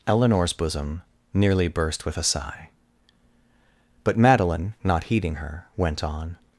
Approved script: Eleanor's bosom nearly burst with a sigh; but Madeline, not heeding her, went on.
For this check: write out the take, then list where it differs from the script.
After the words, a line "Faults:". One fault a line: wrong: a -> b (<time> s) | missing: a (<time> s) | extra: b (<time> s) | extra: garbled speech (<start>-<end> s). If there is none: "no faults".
Eleanor's bosom nearly burst with a sigh; but Madeline, not heeding her, went on.
Faults:
no faults